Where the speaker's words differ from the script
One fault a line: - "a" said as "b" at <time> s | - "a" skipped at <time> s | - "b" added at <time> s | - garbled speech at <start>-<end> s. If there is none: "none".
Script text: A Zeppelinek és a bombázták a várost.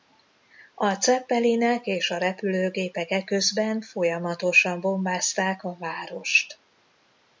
- "repülőgépek eközben folyamatosan" added at 2.2 s